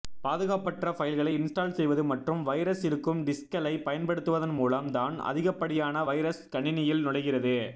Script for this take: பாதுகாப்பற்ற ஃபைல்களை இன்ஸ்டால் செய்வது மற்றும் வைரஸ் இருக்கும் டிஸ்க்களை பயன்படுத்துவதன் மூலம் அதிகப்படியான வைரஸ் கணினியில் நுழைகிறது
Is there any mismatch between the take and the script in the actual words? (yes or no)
yes